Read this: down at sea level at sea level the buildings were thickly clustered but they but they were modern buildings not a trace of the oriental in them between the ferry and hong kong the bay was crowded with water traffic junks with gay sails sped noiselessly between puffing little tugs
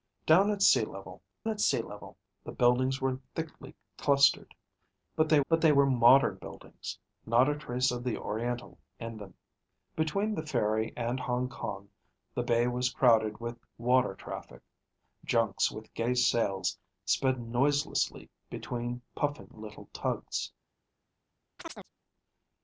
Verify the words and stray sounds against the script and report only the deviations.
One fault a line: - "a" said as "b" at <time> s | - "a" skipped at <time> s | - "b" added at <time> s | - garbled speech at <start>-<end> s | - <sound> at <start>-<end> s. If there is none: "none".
- chirp at 21.6-21.9 s